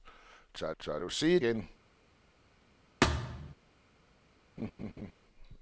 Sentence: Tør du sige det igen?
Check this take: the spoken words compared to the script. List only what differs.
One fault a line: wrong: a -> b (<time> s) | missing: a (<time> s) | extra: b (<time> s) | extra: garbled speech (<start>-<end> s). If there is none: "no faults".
extra: tør (0.8 s)
missing: det (1.4 s)